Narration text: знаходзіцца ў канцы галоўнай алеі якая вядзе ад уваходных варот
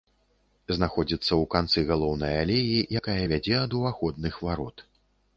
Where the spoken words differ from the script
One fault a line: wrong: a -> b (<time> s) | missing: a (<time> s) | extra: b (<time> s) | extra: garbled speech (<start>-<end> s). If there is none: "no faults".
no faults